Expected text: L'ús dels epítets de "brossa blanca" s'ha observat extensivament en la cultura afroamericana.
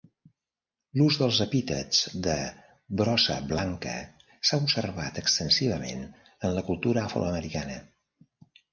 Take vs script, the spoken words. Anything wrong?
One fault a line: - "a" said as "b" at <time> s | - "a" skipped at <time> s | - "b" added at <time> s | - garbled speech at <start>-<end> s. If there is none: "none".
none